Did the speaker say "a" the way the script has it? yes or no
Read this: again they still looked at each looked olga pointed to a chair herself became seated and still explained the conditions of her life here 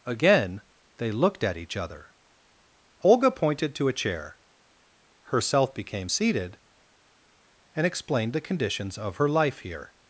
yes